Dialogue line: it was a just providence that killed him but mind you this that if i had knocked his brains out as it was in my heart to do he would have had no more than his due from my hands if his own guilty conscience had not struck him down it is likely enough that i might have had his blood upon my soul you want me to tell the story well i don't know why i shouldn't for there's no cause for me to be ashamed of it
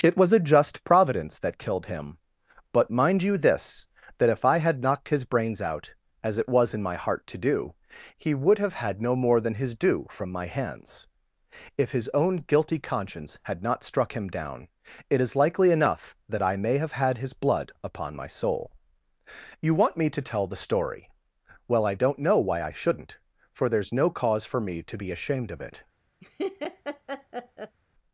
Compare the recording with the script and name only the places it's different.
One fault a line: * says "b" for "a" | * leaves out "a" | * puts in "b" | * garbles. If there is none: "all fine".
* says "may" for "might"